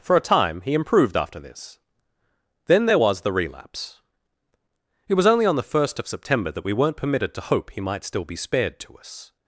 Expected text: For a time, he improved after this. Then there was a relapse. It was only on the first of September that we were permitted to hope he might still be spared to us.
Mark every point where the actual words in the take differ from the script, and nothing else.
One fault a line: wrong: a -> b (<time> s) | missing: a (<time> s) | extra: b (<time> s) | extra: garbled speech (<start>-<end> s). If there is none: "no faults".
wrong: a -> the (3.2 s)
wrong: were -> weren't (6.7 s)